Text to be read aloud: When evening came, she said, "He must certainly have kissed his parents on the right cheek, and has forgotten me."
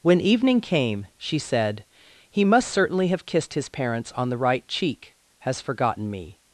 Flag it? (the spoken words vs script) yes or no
yes